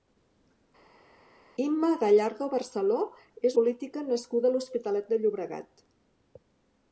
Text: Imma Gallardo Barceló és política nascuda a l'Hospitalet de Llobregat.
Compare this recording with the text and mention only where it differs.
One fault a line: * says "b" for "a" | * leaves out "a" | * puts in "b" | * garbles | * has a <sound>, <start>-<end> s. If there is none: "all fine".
all fine